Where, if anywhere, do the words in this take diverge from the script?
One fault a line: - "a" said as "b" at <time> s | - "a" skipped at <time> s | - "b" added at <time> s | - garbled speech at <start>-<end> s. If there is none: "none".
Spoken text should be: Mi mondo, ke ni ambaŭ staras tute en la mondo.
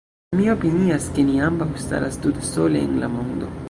- "mondo" said as "opinias" at 0.5 s
- "sole" added at 2.5 s